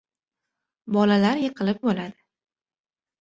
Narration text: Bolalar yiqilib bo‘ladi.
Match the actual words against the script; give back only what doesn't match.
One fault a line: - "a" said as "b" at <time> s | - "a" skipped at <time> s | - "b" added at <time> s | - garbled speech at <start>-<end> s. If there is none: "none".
none